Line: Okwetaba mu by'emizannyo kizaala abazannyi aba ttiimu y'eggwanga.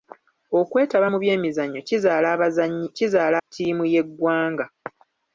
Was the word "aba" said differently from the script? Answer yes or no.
yes